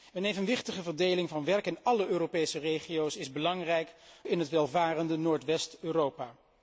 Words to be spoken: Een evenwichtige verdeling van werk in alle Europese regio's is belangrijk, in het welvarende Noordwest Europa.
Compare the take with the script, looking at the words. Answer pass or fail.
pass